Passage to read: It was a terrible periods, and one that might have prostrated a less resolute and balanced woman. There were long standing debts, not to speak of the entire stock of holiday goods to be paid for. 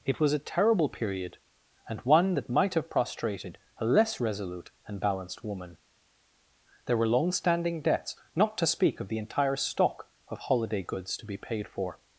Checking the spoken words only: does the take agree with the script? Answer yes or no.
no